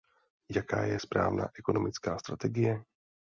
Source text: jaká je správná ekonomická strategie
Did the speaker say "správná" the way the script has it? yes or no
yes